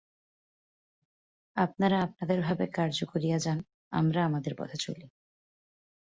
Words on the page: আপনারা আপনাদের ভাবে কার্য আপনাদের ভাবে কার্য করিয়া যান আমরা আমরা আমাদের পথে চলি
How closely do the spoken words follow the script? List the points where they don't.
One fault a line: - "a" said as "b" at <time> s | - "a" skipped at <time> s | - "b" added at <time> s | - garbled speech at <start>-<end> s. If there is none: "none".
- "আপনাদের ভাবে কার্য" skipped at 3.0 s
- "আমরা" skipped at 4.2 s